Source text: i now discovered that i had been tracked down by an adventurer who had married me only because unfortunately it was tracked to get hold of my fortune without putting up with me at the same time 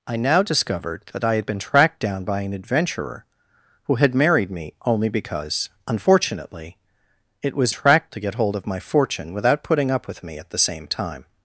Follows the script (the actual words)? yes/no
yes